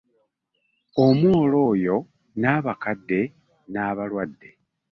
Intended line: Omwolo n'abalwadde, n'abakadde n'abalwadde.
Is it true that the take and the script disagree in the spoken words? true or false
true